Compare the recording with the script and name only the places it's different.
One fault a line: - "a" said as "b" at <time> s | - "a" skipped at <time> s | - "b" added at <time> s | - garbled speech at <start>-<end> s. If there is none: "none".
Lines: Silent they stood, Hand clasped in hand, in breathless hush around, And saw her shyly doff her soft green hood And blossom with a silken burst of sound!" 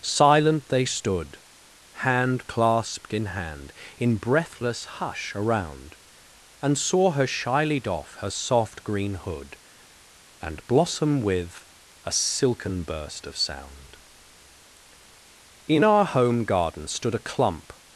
- "In our home garden stood a clump" added at 15.7 s